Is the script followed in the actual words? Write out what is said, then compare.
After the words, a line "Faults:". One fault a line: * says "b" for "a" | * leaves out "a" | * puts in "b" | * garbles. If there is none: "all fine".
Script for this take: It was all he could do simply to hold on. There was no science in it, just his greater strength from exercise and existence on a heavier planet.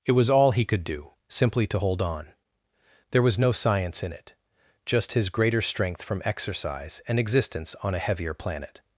It was all he could do simply to hold on. There was no science in it, just his greater strength from exercise and existence on a heavier planet.
Faults:
all fine